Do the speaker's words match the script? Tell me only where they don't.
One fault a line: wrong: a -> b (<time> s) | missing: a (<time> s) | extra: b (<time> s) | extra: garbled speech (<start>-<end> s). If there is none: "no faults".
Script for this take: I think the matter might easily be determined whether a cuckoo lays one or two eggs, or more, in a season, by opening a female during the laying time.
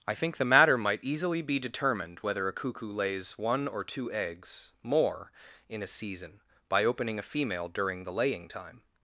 missing: or (4.7 s)